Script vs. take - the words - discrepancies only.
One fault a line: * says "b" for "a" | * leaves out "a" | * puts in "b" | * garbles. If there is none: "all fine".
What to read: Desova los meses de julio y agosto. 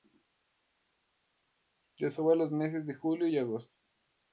all fine